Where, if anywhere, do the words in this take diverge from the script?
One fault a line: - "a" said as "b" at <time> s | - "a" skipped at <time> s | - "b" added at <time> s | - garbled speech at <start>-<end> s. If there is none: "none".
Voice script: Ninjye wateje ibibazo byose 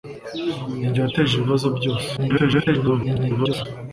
- garbled speech at 2.2-3.7 s